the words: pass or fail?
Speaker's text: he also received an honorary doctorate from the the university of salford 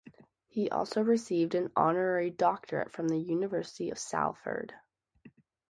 fail